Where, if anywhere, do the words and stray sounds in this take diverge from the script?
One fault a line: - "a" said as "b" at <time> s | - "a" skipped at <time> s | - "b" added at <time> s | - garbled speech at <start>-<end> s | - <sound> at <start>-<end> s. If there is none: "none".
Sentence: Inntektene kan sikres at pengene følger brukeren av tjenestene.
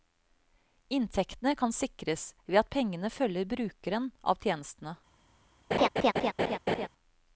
- "ved" added at 2.5 s
- laugh at 5.7-6.9 s